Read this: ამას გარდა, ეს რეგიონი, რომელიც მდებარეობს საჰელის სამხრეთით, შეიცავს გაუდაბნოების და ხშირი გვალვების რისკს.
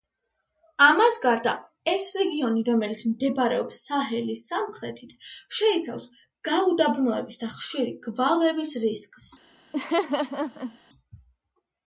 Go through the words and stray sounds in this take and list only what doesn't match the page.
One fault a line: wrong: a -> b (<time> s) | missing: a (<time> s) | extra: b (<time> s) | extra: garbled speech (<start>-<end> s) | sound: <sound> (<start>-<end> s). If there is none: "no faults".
sound: laugh (9.7-10.8 s)